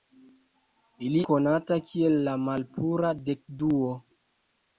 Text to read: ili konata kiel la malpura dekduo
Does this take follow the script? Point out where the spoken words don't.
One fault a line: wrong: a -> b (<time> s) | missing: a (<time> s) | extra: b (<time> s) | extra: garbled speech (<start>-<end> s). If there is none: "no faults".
no faults